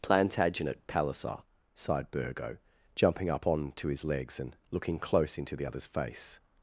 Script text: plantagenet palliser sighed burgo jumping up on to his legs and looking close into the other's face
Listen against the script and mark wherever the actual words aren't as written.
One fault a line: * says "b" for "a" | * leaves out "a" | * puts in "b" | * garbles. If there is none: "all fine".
all fine